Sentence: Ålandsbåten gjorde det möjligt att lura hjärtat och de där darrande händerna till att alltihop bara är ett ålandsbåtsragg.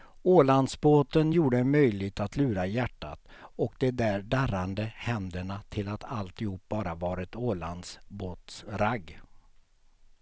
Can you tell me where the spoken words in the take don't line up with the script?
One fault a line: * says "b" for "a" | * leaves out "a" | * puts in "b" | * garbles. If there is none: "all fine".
* says "var" for "är"